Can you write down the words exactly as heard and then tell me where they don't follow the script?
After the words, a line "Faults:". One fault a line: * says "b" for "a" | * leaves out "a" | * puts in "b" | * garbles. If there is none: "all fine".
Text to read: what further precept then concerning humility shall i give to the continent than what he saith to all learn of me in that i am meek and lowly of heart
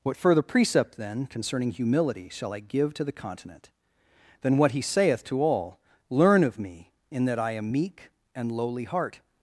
what further precept then concerning humility shall i give to the continent than what he saith to all learn of me in that i am meek and lowly heart
Faults:
* leaves out "of"